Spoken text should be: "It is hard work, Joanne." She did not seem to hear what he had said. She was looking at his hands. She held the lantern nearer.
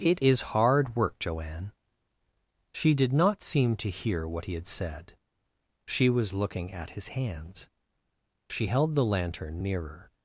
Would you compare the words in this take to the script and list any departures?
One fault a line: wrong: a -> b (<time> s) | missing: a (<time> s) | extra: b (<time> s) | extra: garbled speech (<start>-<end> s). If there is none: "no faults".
no faults